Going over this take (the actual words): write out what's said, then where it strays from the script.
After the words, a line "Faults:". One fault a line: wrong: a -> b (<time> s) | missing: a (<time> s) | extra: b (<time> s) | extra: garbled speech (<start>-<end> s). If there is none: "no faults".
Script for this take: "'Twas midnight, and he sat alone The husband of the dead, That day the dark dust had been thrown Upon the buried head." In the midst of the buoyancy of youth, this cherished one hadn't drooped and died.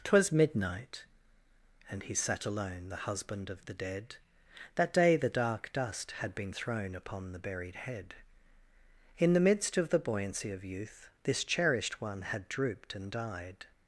"'Twas midnight, and he sat alone The husband of the dead, That day the dark dust had been thrown Upon the buried head." In the midst of the buoyancy of youth, this cherished one had drooped and died.
Faults:
wrong: hadn't -> had (12.2 s)